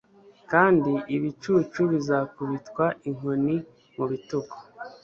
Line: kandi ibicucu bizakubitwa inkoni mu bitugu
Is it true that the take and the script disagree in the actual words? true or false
false